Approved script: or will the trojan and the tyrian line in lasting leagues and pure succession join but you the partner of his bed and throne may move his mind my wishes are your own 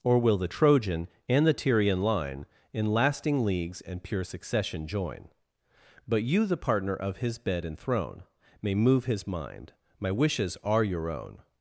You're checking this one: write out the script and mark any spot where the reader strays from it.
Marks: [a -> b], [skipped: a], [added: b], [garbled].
or will the trojan and the tyrian line in lasting leagues and pure succession join but you the partner of his bed and throne may move his mind my wishes are your own